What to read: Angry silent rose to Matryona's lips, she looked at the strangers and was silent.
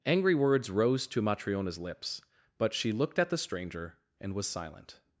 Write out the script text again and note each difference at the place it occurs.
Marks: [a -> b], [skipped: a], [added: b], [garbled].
Angry [silent -> words] rose to Matryona's lips, [added: but] she looked at the [strangers -> stranger] and was silent.